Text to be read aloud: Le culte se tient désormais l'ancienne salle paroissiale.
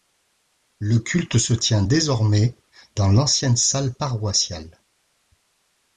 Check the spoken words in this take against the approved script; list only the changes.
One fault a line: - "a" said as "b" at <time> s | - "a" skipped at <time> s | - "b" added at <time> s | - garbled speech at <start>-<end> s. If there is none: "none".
- "dans" added at 2.9 s